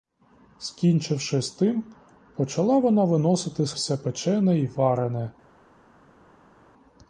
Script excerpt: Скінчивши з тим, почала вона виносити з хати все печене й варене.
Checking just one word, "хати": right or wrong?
wrong